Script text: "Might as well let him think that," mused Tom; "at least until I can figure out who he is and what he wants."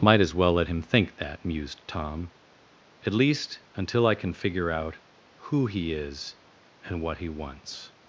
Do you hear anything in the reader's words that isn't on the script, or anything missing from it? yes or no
no